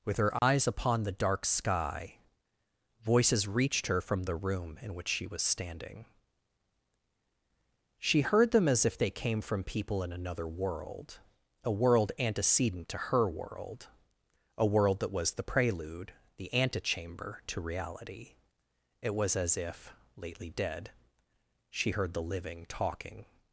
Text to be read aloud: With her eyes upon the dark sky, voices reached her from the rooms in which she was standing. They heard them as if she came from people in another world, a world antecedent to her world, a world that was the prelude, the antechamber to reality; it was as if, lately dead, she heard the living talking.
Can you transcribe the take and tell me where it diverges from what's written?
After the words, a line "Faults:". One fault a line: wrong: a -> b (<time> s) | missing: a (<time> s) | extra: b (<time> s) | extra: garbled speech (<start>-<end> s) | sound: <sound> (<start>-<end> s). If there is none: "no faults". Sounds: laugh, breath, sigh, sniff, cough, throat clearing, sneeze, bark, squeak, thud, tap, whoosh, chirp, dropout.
With her eyes upon the dark sky, voices reached her from the room in which she was standing. She heard them as if they came from people in another world, a world antecedent to her world, a world that was the prelude, the antechamber to reality; it was as if, lately dead, she heard the living talking.
Faults:
sound: dropout (0.4-0.4 s)
wrong: rooms -> room (4.3 s)
wrong: They -> She (8.0 s)
wrong: she -> they (9.0 s)